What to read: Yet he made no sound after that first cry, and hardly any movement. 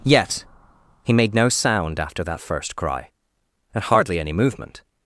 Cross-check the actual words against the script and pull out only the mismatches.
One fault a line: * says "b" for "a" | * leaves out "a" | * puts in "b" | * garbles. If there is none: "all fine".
all fine